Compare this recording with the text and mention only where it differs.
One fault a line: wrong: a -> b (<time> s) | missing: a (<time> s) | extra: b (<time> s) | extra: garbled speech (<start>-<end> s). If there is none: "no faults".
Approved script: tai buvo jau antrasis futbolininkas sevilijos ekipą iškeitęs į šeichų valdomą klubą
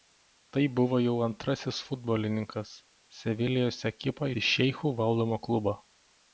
missing: iškeitęs (4.3 s)